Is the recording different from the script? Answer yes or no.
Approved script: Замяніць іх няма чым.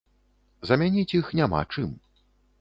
no